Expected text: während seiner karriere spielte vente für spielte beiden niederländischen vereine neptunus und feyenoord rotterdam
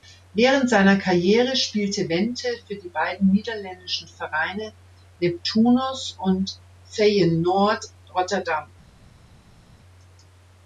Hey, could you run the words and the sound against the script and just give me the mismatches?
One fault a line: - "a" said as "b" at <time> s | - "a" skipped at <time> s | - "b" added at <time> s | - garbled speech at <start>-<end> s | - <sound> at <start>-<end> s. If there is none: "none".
- "spielte" said as "die" at 2.8 s